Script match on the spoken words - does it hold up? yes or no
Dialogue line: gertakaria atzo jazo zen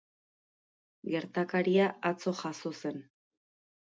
yes